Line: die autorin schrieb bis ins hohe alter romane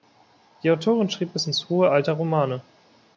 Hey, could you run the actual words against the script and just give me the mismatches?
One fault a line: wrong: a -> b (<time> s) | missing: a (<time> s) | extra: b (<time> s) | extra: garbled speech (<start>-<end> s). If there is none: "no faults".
no faults